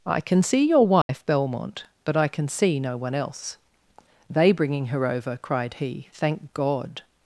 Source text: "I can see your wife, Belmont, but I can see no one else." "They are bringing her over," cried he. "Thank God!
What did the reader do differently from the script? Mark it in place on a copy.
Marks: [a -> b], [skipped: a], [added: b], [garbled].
"I can see your wife, Belmont, but I can see no one else." "They [skipped: are] bringing her over," cried he. "Thank God!